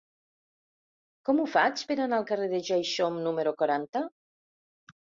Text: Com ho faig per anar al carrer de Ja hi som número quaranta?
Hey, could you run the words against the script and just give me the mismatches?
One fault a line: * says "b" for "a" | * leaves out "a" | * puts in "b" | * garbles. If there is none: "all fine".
all fine